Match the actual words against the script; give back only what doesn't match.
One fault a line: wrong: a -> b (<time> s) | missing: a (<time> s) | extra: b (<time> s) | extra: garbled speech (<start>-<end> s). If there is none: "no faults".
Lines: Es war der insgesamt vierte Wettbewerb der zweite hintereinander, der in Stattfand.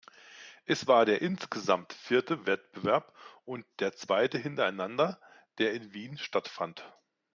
extra: und (3.5 s)
extra: Wien (5.9 s)